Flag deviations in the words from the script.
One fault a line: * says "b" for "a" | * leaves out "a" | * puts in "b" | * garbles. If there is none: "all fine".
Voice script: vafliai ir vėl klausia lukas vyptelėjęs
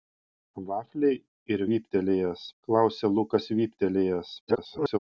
* says "vyptelėjęs" for "vėl"
* garbles